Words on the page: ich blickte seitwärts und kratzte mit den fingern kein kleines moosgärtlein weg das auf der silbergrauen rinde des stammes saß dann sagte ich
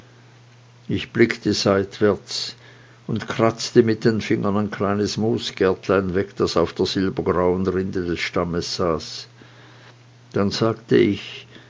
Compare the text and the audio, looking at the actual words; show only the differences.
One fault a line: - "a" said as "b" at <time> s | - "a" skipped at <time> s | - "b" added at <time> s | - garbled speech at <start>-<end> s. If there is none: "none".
- "kein" said as "ein" at 4.6 s